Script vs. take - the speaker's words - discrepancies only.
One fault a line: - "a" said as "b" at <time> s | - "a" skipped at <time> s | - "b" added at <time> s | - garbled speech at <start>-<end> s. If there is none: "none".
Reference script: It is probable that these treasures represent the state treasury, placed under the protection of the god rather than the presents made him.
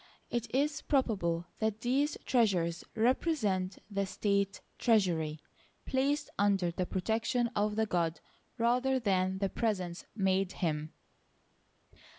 none